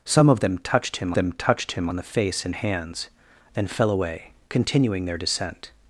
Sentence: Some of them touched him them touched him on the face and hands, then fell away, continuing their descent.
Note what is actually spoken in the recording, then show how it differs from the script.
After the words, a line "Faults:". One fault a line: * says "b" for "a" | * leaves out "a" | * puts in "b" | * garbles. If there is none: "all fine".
Some of them touched him them touched him on the face and hands, then fell away, continuing their descent.
Faults:
all fine